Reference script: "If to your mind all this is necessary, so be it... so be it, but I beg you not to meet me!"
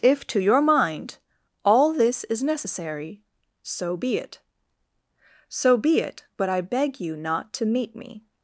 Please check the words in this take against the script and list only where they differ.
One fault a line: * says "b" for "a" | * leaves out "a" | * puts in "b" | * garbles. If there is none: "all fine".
all fine